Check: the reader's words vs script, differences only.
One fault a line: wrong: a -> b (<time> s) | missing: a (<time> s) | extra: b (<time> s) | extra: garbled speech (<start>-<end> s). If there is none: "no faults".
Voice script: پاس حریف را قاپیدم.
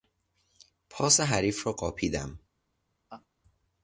no faults